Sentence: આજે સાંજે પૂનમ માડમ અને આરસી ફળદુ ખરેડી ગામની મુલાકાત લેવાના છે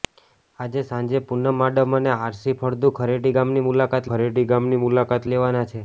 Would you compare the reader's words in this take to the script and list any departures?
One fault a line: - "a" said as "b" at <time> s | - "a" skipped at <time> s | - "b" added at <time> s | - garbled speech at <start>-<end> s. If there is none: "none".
- "ખરેડી ગામની મુલાકાત" added at 4.1 s